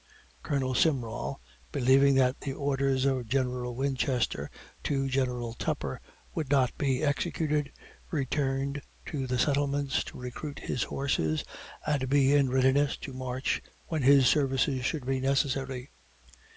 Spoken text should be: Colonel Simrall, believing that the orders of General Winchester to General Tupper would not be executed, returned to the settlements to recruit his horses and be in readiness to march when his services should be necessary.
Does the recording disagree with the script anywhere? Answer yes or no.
no